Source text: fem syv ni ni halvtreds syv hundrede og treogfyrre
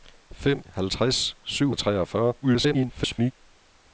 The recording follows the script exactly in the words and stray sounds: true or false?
false